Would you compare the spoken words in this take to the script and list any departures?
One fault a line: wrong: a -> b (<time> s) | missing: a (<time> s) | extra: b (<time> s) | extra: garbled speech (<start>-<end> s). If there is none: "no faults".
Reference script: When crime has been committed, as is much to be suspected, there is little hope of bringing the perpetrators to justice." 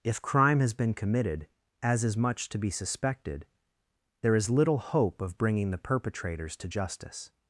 wrong: When -> If (0.0 s)